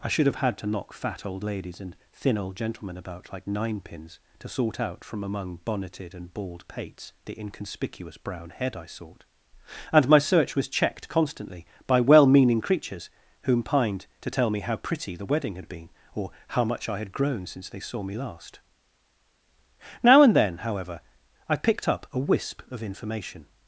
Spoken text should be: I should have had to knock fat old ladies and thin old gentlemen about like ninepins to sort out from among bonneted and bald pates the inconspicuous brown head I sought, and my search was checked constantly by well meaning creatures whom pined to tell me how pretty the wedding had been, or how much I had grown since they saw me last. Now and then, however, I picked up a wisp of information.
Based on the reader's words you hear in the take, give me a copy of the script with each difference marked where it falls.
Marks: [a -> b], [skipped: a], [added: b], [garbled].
I should have had to knock fat old ladies and thin old gentlemen about like ninepins to sort out from among bonneted and bald pates the inconspicuous brown head I sought, and my search was checked constantly by well meaning creatures whom pined to tell me how pretty the wedding had been, or how much I had grown since they saw me last. Now and then, however, I picked up a wisp of information.